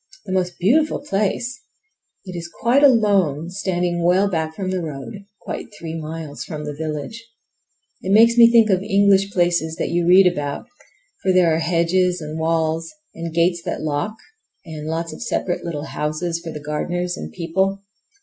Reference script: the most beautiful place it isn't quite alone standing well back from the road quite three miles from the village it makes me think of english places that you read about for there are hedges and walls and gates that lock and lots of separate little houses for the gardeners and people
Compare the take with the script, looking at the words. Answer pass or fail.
fail